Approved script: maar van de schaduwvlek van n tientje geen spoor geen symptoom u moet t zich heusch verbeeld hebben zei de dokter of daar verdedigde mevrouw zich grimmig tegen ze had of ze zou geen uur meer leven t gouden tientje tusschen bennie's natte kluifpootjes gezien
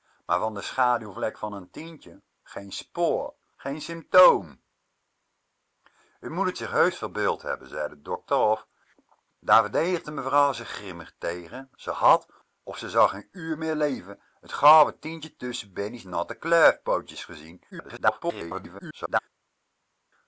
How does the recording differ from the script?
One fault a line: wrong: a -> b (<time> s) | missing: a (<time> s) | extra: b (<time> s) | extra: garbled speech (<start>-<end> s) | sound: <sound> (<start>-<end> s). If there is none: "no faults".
extra: garbled speech (17.7-19.2 s)